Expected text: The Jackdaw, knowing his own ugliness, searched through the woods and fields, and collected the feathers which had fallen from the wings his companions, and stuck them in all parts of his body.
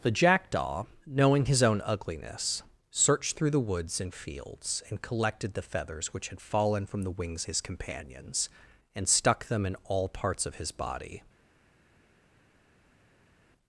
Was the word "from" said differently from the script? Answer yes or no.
no